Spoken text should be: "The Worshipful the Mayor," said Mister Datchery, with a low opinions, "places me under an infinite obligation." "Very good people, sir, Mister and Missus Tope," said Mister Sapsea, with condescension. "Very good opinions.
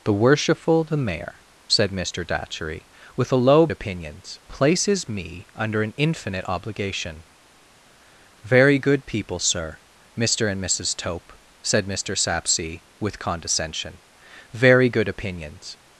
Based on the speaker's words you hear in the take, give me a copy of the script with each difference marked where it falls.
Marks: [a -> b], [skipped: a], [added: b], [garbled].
"The Worshipful the Mayor," said Mister Datchery, with a low opinions, "places me under an infinite obligation." "Very good people, sir, Mister and Missus Tope," said Mister Sapsea, with condescension. "Very good opinions.